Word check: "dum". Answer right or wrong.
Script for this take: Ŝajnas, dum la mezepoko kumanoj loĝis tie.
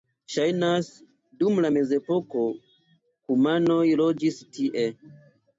right